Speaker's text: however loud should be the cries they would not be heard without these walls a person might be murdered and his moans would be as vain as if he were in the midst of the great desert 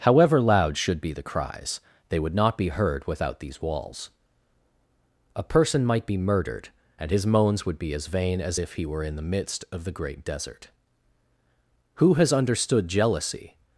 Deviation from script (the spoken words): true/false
true